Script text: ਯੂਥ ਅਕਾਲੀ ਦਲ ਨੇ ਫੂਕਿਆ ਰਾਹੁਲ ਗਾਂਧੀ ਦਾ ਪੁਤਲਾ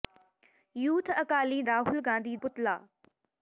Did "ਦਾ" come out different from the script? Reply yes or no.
yes